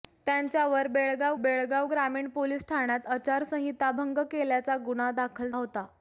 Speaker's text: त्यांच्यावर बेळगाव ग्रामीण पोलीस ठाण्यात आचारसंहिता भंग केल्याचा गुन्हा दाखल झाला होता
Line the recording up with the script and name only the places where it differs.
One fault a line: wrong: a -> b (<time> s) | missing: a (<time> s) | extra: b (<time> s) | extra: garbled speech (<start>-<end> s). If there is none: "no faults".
extra: बेळगाव (1.4 s)
missing: झाला (5.5 s)